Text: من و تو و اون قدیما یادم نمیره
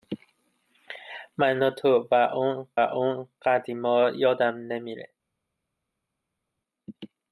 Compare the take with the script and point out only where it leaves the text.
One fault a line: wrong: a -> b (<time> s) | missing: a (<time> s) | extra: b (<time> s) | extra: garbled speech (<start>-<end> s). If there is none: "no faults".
extra: اون (2.7 s)